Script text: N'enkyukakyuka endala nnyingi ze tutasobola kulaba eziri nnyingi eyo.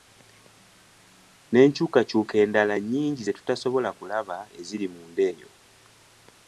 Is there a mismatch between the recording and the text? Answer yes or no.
yes